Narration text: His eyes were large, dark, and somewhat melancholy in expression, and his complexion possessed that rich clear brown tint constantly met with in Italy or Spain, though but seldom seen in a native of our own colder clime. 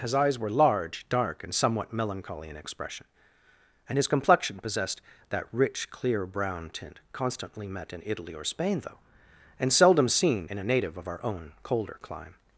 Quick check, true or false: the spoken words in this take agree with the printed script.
false